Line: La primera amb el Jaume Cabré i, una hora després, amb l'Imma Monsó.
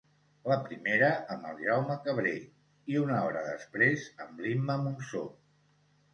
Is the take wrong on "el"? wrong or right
right